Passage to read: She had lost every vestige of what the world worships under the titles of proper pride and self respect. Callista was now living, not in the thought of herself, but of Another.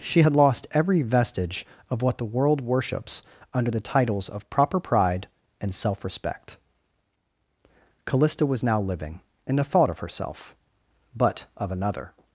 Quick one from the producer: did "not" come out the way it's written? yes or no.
no